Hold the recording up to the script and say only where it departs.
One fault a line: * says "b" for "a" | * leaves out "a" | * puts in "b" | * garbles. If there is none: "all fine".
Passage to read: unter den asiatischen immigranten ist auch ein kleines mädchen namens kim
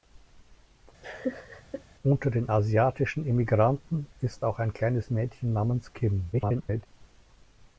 * garbles